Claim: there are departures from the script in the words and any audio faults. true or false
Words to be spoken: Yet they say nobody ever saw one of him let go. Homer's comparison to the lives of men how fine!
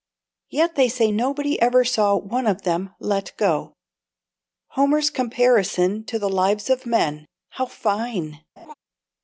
true